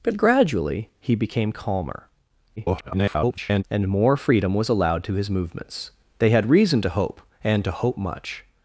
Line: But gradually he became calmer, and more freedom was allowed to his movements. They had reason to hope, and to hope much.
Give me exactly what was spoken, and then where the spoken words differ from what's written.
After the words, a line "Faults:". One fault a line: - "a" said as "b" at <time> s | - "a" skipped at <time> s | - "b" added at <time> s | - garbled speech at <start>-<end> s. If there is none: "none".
But gradually he became calmer, [garbled] and more freedom was allowed to his movements. They had reason to hope, and to hope much.
Faults:
- garbled speech at 2.6-3.6 s